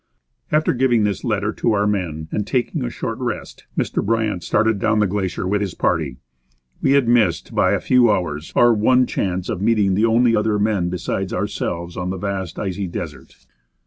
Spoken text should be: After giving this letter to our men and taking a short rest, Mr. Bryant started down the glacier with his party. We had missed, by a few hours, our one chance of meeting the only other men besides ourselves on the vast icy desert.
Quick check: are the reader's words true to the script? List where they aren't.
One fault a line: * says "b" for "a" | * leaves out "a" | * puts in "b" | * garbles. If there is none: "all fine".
all fine